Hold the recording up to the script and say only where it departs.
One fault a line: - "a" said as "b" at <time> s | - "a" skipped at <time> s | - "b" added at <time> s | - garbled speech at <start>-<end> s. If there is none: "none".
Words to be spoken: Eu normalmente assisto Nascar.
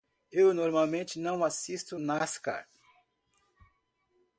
- "não" added at 1.2 s